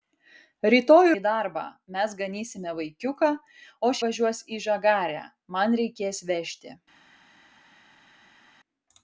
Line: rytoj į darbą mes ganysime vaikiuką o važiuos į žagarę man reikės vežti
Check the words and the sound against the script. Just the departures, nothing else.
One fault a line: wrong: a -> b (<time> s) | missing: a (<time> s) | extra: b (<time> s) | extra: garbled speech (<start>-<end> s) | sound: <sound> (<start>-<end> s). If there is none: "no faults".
no faults